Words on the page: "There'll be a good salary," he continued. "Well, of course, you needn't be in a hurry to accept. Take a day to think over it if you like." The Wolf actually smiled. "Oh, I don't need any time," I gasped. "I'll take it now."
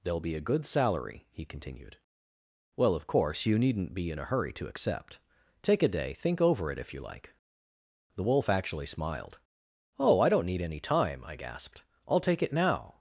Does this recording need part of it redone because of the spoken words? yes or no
yes